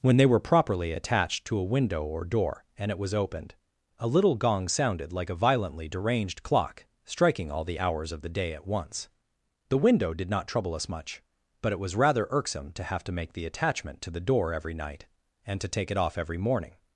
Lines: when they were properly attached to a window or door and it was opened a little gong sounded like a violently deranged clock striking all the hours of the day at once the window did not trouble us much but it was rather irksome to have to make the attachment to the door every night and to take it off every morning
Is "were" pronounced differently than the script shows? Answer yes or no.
no